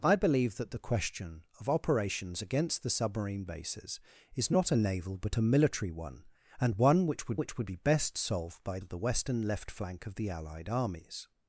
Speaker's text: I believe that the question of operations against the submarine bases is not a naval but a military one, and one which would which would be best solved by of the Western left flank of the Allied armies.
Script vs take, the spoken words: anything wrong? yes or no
no